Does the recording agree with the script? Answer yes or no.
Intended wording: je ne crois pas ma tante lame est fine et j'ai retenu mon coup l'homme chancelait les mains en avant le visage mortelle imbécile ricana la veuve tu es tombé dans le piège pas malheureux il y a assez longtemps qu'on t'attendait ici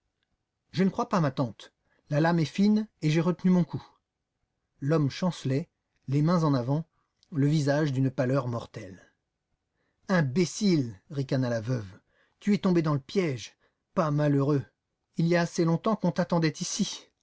no